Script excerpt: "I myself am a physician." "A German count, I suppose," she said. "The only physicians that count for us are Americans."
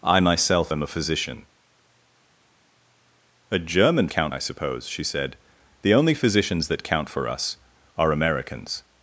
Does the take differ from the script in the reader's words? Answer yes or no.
no